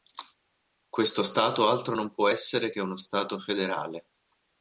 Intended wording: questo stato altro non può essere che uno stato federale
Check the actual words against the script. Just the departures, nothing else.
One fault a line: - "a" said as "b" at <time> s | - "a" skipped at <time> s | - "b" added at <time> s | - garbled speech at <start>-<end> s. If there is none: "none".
none